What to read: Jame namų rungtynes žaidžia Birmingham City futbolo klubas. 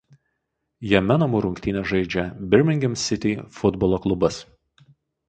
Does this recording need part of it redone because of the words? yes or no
no